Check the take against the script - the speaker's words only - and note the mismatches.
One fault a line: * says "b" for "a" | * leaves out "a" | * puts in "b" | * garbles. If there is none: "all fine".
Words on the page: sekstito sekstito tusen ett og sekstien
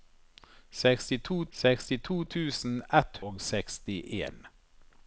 all fine